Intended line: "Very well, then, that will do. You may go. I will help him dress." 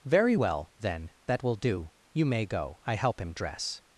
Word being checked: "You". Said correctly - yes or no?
yes